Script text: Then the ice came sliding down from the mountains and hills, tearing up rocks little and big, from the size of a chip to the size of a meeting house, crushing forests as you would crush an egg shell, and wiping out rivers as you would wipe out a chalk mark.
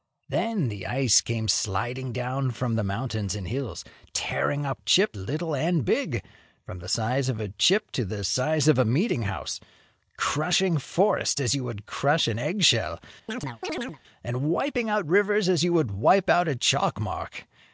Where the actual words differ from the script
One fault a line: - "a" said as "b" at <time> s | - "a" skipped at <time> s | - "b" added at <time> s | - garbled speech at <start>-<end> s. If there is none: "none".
- "rocks" said as "chip" at 4.8 s